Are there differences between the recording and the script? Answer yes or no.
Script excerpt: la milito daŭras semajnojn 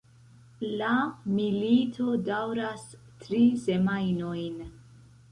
yes